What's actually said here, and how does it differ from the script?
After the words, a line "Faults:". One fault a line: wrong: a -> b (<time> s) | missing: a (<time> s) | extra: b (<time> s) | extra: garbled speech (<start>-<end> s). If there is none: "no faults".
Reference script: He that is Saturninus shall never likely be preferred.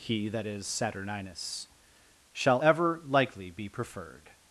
He that is Saturninus shall ever likely be preferred.
Faults:
wrong: never -> ever (2.6 s)